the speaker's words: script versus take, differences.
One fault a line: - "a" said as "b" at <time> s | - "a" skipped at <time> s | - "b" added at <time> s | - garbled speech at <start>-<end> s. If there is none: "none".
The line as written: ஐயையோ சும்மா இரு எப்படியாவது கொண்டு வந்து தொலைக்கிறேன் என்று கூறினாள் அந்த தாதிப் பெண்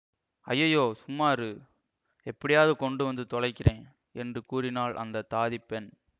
none